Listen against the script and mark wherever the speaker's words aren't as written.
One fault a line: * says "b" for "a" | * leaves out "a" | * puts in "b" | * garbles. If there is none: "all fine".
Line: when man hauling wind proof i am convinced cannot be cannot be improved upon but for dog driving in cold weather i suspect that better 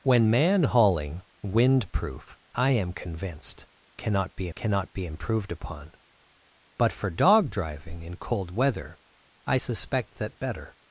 all fine